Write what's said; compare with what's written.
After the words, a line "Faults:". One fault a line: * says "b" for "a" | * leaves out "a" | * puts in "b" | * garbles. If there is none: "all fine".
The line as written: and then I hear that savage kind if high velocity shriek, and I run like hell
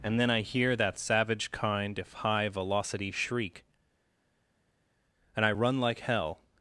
and then I hear that savage kind if high velocity shriek, and I run like hell
Faults:
all fine